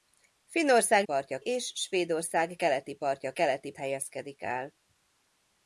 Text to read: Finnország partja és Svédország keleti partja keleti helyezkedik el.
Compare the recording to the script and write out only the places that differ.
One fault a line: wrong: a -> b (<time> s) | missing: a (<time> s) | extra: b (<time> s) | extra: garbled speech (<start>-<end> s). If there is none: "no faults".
no faults